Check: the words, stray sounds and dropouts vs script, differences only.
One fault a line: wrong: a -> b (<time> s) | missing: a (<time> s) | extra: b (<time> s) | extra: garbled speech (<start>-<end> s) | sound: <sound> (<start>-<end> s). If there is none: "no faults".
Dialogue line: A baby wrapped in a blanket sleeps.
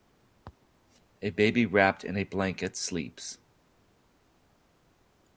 no faults